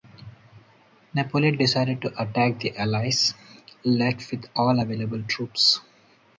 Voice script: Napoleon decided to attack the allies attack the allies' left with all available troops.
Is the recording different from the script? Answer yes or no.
yes